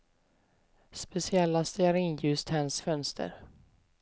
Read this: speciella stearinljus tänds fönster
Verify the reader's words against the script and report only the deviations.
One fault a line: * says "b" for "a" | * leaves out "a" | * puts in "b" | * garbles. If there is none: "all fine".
all fine